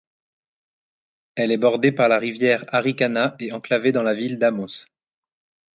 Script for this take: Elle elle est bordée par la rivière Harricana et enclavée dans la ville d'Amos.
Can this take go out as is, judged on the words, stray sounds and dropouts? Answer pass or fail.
fail